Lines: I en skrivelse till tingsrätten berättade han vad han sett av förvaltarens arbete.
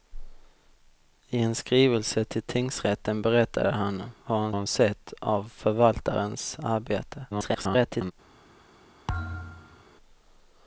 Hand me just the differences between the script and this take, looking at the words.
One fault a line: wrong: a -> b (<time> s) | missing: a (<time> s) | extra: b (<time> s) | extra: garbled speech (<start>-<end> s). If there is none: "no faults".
extra: han (4.5 s)
extra: garbled speech (7.3-8.1 s)